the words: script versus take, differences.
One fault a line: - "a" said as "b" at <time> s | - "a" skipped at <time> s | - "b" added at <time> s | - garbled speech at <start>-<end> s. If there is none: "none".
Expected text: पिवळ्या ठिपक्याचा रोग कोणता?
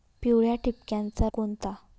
- "रोग" skipped at 1.3 s